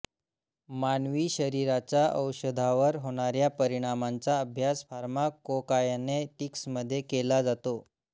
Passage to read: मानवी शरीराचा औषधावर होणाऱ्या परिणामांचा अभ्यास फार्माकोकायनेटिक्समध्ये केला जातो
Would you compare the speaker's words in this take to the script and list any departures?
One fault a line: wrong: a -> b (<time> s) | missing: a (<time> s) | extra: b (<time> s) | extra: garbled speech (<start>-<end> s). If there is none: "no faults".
no faults